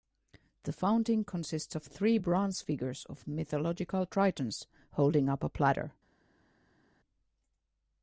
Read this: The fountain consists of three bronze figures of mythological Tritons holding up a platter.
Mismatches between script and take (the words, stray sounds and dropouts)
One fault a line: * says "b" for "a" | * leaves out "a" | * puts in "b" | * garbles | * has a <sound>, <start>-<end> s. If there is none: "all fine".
all fine